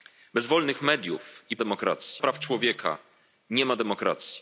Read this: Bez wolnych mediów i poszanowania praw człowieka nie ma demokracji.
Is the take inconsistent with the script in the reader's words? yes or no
yes